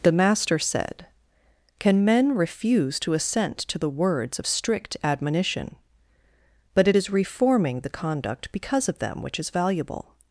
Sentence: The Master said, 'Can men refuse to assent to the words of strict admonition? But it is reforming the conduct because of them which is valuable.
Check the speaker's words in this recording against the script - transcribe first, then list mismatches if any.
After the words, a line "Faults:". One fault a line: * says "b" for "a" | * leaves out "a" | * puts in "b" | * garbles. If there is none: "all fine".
The Master said, 'Can men refuse to assent to the words of strict admonition? But it is reforming the conduct because of them which is valuable.
Faults:
all fine